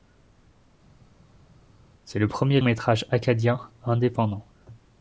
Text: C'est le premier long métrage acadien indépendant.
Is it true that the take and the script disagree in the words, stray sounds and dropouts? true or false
true